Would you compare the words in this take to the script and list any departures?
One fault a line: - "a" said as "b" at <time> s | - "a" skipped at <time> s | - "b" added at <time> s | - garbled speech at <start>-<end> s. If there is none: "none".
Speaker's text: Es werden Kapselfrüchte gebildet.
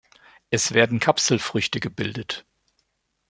none